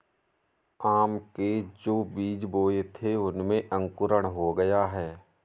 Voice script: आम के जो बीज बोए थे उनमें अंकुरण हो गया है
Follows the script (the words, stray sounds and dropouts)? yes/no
yes